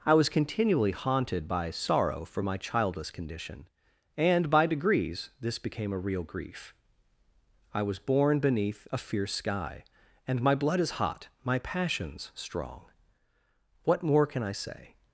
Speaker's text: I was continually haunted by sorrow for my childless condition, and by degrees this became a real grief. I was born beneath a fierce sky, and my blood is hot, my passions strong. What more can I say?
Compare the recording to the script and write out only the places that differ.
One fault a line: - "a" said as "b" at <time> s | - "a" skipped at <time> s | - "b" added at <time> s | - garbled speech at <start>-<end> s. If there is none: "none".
none